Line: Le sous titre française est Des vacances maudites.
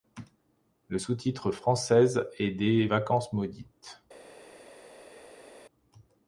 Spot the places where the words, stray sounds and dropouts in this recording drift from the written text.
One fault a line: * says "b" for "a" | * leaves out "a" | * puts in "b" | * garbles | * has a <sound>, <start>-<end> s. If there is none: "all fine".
all fine